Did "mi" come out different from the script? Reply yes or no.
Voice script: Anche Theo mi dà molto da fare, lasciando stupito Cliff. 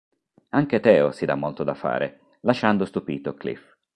yes